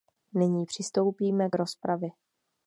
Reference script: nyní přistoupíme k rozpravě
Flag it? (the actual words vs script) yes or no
no